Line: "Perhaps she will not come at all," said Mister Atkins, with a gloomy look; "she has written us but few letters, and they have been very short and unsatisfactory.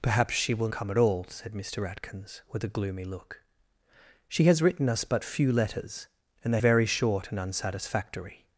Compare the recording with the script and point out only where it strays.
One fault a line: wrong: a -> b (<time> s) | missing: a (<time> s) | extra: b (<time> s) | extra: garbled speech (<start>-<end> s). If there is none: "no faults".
missing: not (0.7 s)
missing: have been (6.6 s)